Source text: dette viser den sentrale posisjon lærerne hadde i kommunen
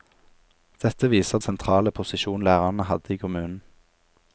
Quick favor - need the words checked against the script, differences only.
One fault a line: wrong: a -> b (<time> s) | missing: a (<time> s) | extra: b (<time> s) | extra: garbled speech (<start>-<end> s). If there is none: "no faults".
missing: den (1.4 s)